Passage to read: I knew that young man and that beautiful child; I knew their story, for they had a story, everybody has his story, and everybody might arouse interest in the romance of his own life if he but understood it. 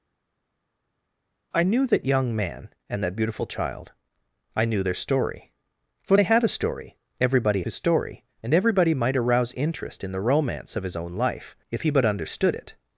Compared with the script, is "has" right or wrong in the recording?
wrong